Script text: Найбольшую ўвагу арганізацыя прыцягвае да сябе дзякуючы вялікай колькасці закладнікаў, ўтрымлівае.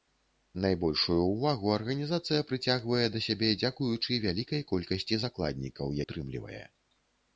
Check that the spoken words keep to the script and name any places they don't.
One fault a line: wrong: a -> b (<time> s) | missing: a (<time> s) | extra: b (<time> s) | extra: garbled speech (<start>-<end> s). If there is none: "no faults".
no faults